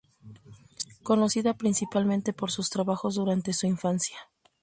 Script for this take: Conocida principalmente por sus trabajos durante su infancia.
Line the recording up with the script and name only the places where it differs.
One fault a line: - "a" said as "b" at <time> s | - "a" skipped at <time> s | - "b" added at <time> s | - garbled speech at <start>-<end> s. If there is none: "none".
none